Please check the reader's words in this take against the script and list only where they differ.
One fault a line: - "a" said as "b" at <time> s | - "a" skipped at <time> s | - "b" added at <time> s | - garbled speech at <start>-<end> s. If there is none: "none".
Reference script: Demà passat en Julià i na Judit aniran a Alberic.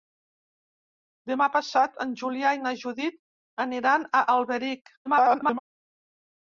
- garbled speech at 5.1-5.6 s